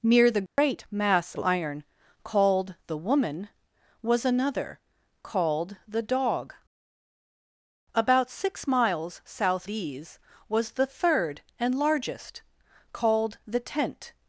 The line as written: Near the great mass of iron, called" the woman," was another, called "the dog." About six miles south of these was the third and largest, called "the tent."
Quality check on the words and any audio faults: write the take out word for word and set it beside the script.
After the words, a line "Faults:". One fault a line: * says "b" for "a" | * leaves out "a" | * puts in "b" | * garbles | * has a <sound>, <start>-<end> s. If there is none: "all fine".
Near the great mass iron, called" the woman," was another, called "the dog." About six miles south these was the third and largest, called "the tent."
Faults:
* has a dropout, 0.5-0.6 s
* leaves out "of"
* leaves out "of"